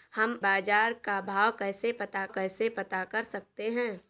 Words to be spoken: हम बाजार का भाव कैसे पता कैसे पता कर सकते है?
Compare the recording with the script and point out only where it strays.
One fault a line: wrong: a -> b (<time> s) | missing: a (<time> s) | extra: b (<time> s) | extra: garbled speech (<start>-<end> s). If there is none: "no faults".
no faults